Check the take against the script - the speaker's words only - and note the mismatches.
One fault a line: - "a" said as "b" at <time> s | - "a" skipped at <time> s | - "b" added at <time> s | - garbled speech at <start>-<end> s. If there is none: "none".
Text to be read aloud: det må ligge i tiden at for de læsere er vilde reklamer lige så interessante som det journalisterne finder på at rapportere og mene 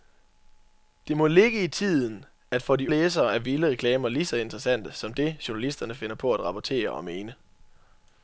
none